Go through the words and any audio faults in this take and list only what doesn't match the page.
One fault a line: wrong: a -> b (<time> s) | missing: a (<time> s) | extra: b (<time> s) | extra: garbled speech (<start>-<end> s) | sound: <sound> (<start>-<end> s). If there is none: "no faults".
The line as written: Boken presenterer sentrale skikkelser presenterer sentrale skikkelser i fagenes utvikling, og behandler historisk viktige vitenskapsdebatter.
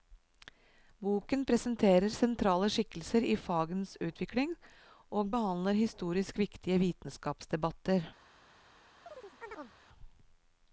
missing: presenterer sentrale skikkelser (3.3 s)
sound: chirp (9.1-9.8 s)